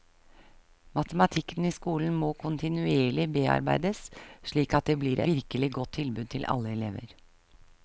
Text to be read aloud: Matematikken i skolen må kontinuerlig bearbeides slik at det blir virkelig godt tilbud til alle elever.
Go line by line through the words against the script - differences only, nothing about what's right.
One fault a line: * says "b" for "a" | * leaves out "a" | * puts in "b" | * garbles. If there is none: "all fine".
all fine